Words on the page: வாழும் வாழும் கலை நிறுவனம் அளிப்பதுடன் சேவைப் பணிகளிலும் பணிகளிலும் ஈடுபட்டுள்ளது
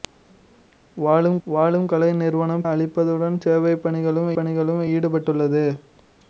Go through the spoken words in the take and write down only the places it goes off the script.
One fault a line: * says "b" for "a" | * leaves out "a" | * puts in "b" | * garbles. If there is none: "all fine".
all fine